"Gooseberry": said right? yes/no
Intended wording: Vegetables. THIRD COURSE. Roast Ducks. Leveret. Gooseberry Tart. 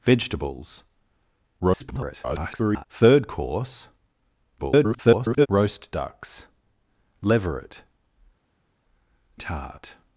no